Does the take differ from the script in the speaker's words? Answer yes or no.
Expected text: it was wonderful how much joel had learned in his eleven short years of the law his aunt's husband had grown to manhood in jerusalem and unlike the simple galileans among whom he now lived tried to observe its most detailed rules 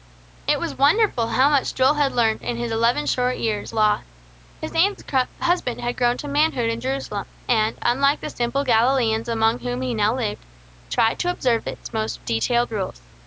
yes